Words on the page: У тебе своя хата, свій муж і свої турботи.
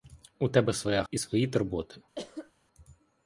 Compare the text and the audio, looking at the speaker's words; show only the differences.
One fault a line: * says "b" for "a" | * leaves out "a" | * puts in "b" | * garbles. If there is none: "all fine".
* leaves out "хата свій муж"